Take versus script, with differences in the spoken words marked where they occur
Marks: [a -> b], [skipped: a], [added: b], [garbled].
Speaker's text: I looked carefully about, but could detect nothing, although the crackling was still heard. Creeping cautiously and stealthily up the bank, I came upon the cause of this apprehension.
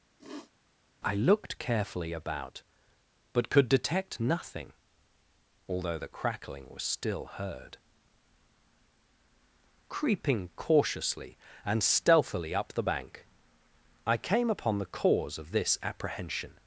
I looked carefully about, but could detect nothing, although the crackling was still heard. Creeping cautiously and stealthily up the bank, I came upon the cause of this apprehension.